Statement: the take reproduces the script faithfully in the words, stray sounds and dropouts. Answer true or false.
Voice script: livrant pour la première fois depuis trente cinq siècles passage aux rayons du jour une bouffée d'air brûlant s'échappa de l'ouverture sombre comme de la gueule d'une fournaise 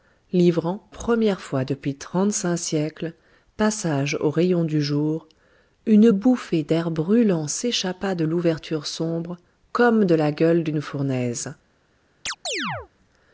false